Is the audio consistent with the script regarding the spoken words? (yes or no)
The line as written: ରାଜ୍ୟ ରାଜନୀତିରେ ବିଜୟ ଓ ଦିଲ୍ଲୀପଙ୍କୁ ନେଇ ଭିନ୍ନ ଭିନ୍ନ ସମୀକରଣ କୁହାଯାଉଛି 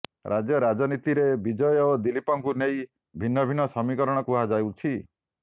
yes